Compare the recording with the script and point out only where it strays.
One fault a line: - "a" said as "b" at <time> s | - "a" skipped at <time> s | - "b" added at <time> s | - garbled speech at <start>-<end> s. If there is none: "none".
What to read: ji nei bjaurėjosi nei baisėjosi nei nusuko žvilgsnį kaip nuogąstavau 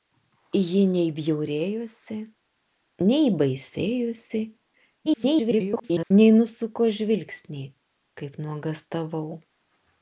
- garbled speech at 5.1-6.1 s